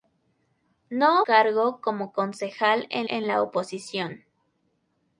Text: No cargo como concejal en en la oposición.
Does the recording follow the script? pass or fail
pass